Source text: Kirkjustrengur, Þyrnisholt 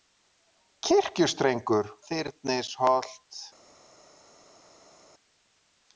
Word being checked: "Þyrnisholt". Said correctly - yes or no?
yes